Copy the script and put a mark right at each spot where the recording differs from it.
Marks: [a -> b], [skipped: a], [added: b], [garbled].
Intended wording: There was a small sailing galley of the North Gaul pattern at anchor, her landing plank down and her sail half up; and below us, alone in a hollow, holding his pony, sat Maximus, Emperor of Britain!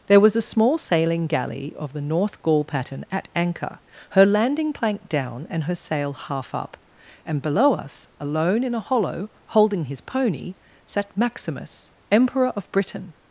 There was a small sailing galley of the North Gaul pattern at anchor, her landing plank down and her sail half up; and below us, alone in a hollow, holding his pony, sat Maximus, Emperor of Britain!